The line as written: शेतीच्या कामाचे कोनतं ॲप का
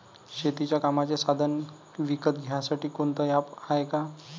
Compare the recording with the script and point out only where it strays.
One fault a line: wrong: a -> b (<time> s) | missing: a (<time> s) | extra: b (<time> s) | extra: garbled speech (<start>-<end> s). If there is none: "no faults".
extra: साधनं विकत घ्यासाठी (1.2 s)
extra: हाये (3.6 s)